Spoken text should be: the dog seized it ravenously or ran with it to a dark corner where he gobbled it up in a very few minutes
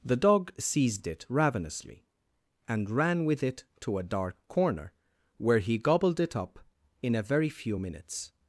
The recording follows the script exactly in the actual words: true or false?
false